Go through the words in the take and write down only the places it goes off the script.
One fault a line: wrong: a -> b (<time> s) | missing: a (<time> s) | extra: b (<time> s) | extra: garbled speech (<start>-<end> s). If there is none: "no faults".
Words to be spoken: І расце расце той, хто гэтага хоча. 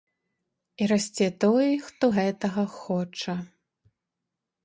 missing: расце (1.3 s)